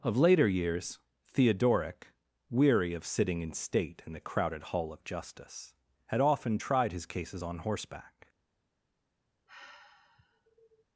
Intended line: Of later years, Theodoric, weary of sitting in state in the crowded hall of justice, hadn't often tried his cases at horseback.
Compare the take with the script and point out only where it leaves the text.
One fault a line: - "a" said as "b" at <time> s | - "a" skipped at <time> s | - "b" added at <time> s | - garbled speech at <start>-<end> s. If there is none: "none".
- "hadn't" said as "had" at 6.1 s
- "at" said as "on" at 7.4 s